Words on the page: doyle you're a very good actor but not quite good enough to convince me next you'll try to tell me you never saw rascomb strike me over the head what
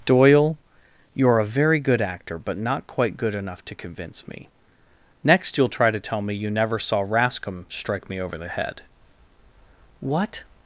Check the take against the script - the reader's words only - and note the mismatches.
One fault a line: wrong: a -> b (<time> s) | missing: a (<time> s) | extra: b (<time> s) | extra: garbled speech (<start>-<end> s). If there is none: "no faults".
no faults